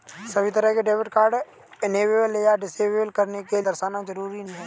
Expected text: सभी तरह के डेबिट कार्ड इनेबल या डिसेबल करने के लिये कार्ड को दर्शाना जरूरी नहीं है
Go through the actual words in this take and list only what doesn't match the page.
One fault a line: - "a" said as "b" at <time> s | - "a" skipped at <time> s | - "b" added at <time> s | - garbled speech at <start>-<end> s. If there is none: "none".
- "लिये कार्ड को" skipped at 3.6 s
- "नहीं" skipped at 4.4 s